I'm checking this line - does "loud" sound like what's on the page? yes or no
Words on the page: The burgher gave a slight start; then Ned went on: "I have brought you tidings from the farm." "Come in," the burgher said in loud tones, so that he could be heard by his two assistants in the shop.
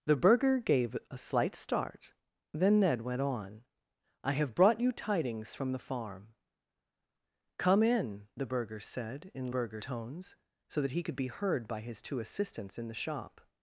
no